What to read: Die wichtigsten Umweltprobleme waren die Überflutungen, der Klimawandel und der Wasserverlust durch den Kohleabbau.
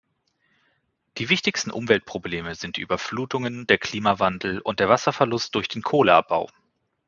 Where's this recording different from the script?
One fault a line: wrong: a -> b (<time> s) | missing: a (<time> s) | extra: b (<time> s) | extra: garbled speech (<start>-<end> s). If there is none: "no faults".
wrong: waren -> sind (2.5 s)